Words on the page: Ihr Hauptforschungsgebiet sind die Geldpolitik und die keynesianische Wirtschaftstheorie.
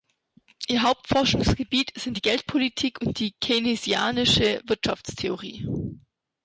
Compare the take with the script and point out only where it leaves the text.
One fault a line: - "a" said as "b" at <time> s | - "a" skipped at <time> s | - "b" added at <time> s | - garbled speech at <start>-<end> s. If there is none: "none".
none